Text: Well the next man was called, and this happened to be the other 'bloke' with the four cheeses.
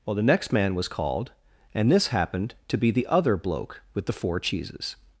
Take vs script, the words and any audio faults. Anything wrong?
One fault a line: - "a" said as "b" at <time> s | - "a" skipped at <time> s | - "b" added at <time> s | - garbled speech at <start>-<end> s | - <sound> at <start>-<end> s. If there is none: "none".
none